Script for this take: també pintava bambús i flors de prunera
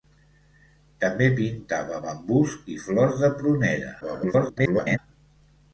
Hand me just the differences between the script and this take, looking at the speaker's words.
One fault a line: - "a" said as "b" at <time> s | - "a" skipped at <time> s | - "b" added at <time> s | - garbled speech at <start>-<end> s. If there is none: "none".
- garbled speech at 4.0-5.0 s